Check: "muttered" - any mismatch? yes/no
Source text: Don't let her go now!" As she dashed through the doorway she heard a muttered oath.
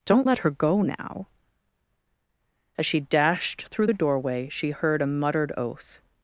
no